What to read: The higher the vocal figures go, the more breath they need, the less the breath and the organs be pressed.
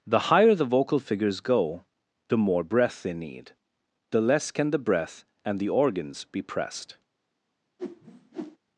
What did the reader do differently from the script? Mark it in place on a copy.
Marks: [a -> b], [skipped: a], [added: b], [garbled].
The higher the vocal figures go, the more breath they need, the less [added: can] the breath and the organs be pressed.